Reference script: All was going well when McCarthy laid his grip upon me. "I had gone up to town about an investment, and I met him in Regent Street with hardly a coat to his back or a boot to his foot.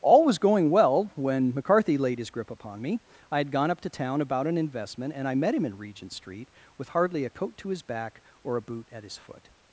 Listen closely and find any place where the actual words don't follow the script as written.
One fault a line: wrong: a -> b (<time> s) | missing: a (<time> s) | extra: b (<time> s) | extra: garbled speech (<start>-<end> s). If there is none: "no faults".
wrong: to -> at (8.9 s)